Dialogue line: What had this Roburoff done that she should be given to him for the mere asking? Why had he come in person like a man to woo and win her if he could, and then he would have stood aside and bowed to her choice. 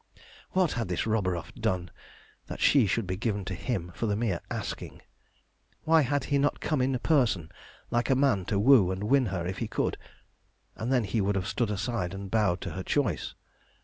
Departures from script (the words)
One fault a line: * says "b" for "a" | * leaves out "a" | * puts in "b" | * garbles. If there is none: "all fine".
* puts in "not"